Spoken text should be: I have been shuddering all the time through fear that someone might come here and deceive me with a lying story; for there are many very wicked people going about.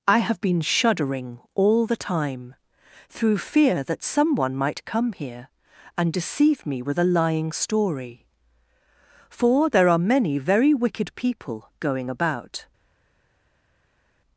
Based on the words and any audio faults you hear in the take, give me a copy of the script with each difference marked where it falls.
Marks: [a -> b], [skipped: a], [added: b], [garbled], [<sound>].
I have been shuddering all the time through fear that someone might come here and deceive me with a lying story; for there are many very wicked people going about.